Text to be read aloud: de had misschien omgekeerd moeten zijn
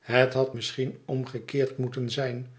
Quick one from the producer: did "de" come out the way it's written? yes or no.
no